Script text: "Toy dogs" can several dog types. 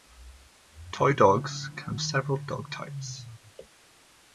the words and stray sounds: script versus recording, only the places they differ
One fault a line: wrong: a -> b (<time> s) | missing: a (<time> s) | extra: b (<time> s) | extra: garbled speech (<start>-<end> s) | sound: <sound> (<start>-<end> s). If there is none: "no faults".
no faults